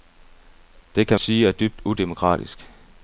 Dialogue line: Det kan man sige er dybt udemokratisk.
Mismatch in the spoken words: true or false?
true